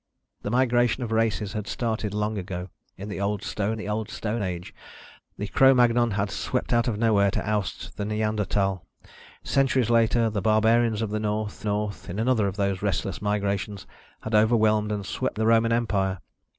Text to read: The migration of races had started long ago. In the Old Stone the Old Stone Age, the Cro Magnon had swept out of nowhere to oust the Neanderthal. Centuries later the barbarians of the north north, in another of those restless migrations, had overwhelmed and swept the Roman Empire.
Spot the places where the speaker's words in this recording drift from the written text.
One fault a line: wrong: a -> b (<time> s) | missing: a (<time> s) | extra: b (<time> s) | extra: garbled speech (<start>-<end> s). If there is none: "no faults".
no faults